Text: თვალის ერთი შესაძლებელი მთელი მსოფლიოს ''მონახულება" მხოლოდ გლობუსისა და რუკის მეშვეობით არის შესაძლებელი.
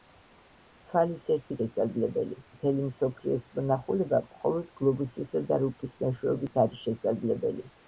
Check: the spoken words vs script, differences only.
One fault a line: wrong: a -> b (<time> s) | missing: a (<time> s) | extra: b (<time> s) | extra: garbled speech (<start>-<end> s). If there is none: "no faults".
no faults